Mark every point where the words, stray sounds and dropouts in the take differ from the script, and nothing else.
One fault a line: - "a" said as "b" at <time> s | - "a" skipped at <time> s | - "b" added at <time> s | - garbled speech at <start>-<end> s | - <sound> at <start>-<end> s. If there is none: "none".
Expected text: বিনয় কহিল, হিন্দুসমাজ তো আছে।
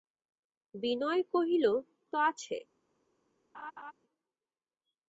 - "হিন্দুসমাজ" skipped at 1.6 s
- laugh at 3.5-3.9 s